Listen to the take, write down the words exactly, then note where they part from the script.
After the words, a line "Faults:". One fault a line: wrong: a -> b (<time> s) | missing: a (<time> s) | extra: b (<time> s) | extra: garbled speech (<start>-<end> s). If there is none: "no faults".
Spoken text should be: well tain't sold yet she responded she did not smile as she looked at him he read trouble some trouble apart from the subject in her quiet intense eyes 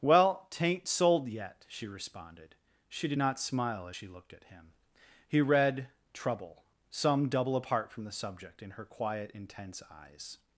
well tain't sold yet she responded she did not smile as she looked at him he read trouble some double apart from the subject in her quiet intense eyes
Faults:
wrong: trouble -> double (7.3 s)